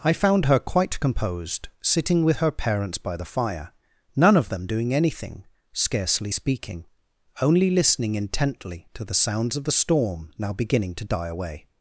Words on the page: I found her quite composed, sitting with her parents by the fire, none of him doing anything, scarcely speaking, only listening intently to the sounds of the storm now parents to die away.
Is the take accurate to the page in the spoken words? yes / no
no